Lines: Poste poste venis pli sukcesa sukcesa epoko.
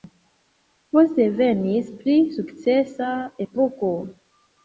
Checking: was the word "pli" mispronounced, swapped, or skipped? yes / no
no